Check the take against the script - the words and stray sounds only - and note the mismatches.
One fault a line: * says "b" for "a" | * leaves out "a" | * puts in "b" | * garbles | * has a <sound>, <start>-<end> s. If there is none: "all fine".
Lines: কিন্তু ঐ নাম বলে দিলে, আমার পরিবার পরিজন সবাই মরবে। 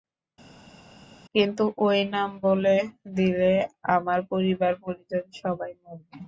all fine